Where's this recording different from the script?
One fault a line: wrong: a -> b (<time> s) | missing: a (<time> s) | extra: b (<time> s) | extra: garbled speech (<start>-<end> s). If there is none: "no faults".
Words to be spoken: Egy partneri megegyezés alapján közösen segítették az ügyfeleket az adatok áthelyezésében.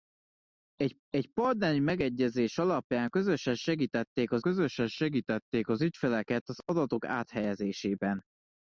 extra: egy (1.1 s)
extra: közösen segítették az (4.4 s)